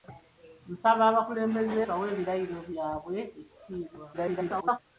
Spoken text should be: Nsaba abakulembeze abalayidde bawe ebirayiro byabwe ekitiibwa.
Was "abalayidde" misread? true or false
true